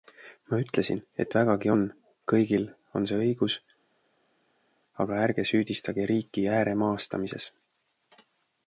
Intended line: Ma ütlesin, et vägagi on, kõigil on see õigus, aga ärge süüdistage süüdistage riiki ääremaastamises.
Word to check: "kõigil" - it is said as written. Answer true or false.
true